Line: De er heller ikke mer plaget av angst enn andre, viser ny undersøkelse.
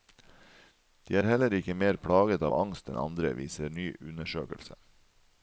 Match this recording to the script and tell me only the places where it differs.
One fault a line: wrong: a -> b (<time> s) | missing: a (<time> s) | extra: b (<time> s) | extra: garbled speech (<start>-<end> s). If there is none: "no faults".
no faults